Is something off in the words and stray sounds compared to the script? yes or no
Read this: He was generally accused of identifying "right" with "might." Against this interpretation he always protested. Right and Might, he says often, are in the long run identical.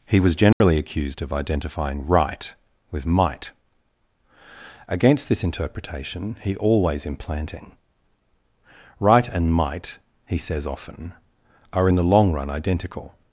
yes